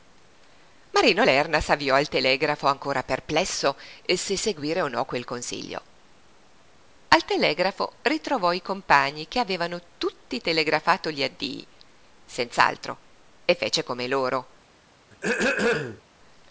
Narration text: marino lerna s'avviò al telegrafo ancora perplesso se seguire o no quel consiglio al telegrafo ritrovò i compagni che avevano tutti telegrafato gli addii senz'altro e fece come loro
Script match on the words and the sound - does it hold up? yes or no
no